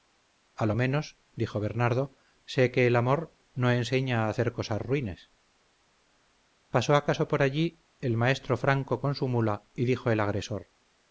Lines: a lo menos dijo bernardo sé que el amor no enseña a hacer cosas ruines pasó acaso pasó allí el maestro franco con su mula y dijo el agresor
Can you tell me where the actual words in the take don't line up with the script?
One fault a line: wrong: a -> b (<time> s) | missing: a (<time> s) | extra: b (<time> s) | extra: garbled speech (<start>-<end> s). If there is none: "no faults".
wrong: pasó -> por (7.3 s)